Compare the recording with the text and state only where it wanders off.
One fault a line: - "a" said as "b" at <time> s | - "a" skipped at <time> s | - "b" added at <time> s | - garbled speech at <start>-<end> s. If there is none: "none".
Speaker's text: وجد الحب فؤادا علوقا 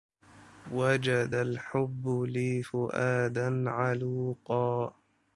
- "لي" added at 2.1 s